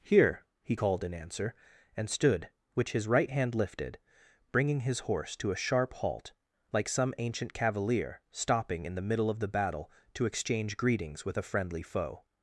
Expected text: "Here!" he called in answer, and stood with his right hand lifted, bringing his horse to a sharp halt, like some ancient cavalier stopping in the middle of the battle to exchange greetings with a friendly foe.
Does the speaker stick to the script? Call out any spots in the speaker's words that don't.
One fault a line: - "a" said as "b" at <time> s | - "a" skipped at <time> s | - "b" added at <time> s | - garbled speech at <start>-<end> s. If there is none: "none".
- "with" said as "which" at 2.7 s